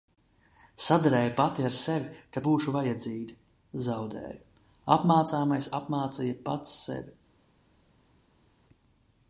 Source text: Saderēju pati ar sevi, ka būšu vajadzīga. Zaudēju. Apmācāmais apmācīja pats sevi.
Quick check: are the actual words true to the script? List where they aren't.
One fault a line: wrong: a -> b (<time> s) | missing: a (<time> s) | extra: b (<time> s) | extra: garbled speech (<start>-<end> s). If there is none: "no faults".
no faults